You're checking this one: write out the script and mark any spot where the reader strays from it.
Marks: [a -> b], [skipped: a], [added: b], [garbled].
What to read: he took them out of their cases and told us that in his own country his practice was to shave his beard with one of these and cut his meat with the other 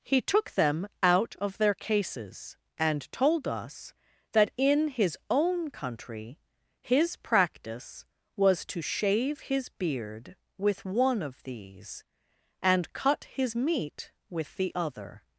he took them out of their cases and told us that in his own country his practice was to shave his beard with one of these and cut his meat with the other